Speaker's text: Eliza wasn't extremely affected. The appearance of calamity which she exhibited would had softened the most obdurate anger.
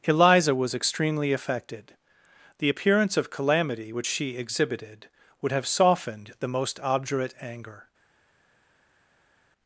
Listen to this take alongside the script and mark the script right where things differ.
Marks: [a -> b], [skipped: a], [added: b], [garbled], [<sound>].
Eliza [wasn't -> was] extremely affected. The appearance of calamity which she exhibited would [had -> have] softened the most obdurate anger.